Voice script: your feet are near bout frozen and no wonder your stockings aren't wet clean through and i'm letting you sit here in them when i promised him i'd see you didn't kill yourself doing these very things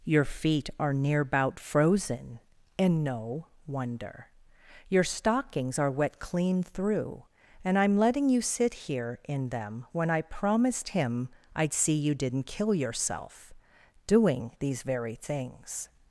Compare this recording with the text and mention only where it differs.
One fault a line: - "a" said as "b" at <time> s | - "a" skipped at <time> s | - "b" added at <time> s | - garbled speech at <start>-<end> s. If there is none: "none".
- "aren't" said as "are" at 5.8 s